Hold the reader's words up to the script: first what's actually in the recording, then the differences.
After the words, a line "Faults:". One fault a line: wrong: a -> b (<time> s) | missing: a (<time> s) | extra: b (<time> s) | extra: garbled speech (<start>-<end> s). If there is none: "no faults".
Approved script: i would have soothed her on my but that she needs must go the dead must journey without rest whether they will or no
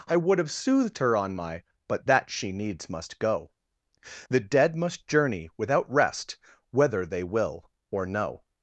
i would have soothed her on my but that she needs must go the dead must journey without rest whether they will or no
Faults:
no faults